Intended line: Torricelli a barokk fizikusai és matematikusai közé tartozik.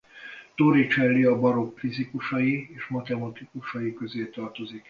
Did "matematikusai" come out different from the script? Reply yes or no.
no